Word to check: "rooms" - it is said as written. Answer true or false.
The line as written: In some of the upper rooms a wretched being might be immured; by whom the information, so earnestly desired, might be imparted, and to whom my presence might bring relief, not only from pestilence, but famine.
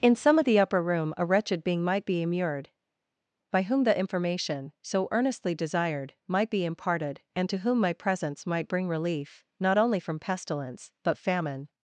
false